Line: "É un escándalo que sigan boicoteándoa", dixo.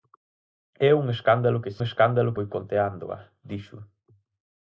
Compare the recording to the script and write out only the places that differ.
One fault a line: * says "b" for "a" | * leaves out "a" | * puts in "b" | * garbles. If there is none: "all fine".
* says "escándalo" for "sigan"